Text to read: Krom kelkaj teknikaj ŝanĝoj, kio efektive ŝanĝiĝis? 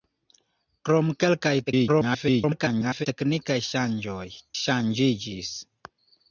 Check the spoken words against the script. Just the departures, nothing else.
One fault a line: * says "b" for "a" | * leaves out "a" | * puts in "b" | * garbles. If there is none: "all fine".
* garbles
* leaves out "kio efektive"